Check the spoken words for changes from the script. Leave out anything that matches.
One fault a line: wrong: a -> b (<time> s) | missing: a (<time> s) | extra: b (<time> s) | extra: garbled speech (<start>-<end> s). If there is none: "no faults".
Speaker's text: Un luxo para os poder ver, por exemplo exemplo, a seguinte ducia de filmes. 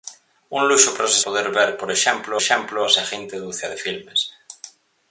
no faults